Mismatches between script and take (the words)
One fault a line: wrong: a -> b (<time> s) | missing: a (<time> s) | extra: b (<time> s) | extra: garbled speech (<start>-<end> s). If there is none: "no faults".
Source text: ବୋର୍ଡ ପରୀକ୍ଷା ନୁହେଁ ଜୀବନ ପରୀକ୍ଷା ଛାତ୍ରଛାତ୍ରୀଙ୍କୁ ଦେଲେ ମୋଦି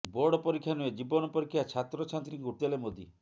no faults